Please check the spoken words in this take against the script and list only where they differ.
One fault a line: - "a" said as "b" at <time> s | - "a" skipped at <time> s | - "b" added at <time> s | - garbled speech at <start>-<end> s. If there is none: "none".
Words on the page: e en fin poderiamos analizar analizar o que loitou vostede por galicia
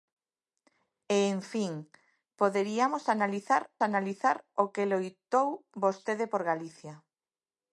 none